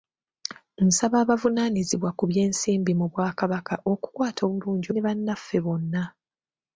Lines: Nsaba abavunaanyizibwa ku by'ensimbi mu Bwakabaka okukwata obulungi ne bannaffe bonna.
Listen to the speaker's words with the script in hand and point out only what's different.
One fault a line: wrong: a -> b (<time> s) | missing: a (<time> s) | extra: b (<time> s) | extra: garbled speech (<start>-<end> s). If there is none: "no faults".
no faults